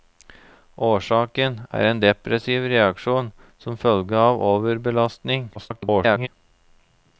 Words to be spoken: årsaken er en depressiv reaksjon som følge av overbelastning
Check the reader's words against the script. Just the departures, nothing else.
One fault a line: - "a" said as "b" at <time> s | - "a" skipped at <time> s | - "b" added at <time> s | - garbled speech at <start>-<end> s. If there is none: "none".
- garbled speech at 5.5-6.3 s